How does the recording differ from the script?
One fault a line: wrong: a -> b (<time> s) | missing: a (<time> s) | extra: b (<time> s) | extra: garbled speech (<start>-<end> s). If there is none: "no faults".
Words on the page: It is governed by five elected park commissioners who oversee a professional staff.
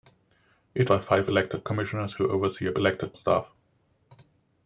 missing: is governed (0.9 s)
missing: park (1.6 s)
wrong: professional -> elected (2.8 s)